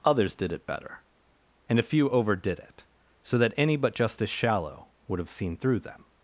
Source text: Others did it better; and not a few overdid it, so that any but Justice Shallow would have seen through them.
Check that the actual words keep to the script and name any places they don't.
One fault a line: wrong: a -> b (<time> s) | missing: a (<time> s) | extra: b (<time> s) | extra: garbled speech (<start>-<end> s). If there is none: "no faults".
missing: not (1.8 s)